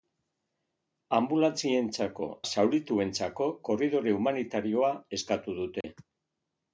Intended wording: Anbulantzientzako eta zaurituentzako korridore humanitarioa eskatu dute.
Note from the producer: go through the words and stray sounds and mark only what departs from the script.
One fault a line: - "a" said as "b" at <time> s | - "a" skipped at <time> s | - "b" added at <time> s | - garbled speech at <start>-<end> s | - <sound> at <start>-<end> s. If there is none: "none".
- "eta" skipped at 2.3 s
- dropout at 5.8-5.8 s